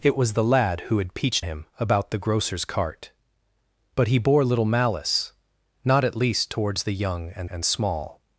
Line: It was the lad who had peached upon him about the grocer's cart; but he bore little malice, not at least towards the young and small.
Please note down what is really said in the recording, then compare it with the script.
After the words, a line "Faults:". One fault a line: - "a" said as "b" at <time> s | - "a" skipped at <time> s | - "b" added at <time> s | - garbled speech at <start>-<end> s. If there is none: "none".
It was the lad who had peached him about the grocer's cart; but he bore little malice, not at least towards the young and and small.
Faults:
- "upon" skipped at 1.4 s
- "and" added at 7.4 s